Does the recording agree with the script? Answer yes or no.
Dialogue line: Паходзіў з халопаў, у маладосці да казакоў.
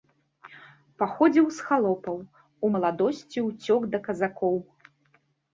no